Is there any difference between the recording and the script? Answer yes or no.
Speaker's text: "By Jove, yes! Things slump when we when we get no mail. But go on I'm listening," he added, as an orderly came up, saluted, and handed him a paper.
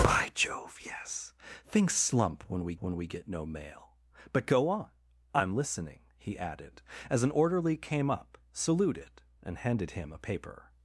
no